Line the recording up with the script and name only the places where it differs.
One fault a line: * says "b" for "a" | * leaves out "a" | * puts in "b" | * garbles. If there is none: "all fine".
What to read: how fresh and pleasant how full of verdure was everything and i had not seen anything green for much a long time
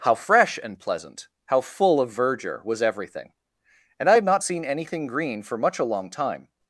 all fine